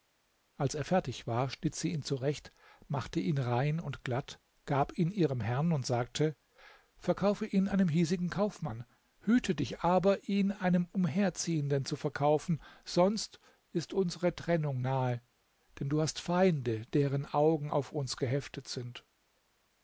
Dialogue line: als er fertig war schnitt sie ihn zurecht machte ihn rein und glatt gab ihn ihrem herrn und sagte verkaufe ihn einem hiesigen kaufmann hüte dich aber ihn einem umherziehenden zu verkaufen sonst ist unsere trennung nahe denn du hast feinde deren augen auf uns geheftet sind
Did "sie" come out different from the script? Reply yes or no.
no